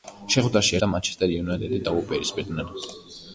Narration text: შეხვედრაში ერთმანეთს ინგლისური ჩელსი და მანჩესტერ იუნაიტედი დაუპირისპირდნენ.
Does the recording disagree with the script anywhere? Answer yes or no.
yes